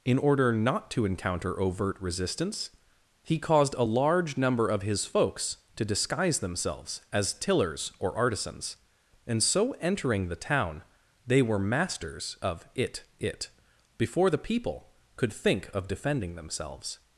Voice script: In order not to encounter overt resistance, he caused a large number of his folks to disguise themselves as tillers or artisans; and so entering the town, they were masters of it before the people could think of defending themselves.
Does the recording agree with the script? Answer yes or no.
no